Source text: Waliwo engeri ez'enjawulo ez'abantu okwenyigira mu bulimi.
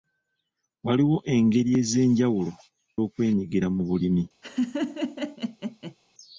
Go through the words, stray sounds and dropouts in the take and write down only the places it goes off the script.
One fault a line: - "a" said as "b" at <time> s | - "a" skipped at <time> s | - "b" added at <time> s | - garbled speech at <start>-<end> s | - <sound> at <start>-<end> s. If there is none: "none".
- "ez'abantu" skipped at 2.5 s
- laugh at 4.4-5.9 s